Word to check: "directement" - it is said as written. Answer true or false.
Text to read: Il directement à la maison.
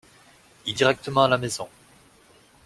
true